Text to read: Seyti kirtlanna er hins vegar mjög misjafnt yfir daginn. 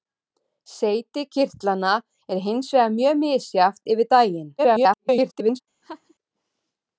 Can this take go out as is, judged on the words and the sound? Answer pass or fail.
fail